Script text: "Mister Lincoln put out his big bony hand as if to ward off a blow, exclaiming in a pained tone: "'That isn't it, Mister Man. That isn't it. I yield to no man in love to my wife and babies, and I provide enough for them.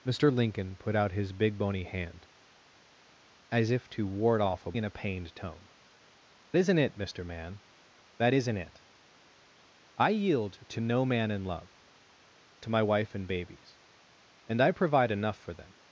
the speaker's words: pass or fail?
fail